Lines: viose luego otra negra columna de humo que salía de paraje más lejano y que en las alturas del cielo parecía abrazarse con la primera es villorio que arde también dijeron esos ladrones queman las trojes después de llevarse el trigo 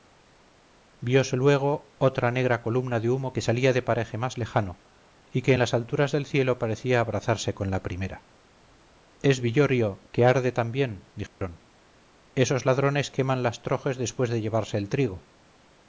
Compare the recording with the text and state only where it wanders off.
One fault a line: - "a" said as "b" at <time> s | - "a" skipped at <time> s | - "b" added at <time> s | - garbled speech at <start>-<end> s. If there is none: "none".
none